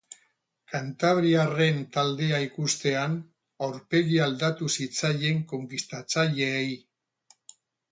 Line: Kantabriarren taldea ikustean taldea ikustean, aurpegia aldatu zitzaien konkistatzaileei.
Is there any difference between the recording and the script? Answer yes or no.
yes